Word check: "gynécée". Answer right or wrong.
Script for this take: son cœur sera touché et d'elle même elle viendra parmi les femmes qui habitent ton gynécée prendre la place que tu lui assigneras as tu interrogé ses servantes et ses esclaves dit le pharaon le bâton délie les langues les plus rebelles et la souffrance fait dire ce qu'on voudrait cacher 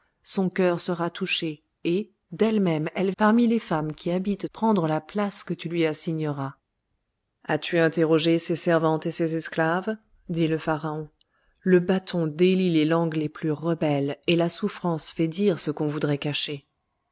wrong